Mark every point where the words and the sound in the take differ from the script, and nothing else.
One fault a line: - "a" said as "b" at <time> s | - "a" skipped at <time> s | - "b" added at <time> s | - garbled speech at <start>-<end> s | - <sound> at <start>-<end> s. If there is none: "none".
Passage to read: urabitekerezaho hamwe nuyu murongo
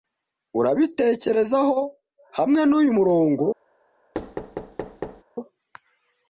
- thud at 4.1-5.2 s